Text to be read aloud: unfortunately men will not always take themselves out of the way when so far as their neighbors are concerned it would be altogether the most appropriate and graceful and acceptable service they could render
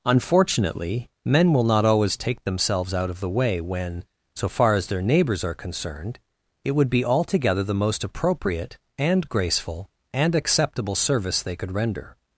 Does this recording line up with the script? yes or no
yes